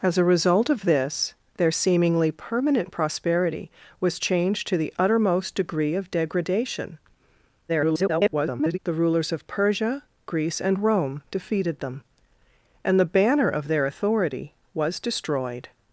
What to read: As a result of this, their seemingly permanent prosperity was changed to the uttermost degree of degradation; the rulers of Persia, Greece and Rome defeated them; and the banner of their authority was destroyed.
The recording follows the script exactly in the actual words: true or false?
false